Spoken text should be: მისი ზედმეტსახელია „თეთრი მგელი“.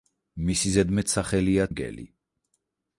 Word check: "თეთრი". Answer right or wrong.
wrong